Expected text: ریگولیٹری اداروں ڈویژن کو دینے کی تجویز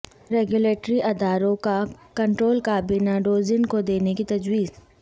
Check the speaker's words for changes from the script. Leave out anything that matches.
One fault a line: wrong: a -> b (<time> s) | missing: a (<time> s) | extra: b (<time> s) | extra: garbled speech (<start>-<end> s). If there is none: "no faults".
extra: کا کنٹرول کابینہ (1.6 s)